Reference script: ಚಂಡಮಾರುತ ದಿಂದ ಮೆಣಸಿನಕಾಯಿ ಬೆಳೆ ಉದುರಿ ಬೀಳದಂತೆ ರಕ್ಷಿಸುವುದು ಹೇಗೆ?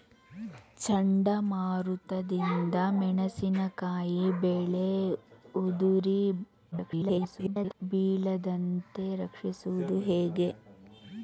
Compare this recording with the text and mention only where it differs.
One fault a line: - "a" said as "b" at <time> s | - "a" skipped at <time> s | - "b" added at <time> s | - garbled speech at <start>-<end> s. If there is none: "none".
- garbled speech at 6.7-7.7 s